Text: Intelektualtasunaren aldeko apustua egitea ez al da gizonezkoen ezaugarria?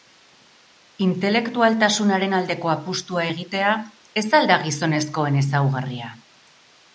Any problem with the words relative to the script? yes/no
no